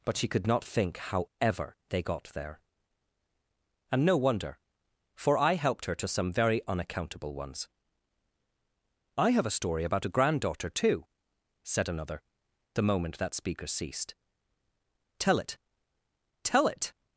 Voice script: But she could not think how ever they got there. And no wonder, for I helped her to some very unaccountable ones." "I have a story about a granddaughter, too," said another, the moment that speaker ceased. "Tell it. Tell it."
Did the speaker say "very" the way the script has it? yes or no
yes